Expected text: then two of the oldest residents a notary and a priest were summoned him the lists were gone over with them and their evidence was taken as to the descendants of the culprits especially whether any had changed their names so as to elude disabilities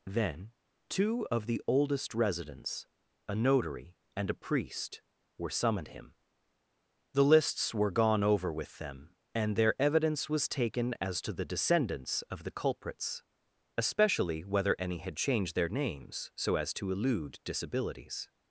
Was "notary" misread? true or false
false